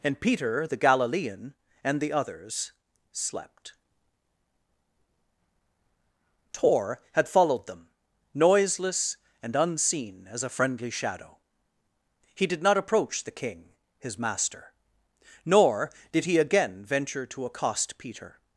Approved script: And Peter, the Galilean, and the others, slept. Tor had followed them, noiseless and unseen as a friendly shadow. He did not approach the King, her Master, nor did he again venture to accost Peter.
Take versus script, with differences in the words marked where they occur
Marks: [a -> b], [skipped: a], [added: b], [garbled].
And Peter, the Galilean, and the others, slept. Tor had followed them, noiseless and unseen as a friendly shadow. He did not approach the King, [her -> his] Master, nor did he again venture to accost Peter.